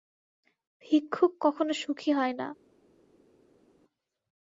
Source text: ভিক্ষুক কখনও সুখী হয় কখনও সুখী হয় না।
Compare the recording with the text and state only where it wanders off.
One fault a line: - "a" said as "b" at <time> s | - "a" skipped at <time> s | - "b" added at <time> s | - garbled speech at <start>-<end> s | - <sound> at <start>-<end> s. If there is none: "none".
- "কখনও সুখী হয়" skipped at 2.3 s